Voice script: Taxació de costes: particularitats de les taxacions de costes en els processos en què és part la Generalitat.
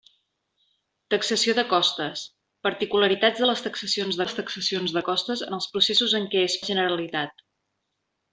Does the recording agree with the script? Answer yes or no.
no